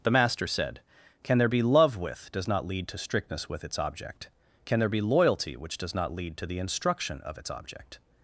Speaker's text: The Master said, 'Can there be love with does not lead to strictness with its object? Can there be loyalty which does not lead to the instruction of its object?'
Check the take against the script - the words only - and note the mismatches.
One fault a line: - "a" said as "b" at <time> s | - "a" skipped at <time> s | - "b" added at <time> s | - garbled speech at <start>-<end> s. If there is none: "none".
none